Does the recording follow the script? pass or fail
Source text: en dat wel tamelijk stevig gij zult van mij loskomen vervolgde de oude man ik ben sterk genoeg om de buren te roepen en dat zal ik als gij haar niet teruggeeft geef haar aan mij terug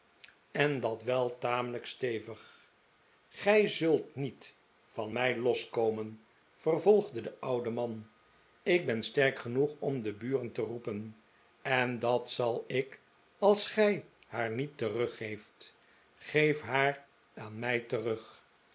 fail